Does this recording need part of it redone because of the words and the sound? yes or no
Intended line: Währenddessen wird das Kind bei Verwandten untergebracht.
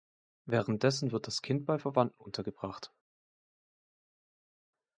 no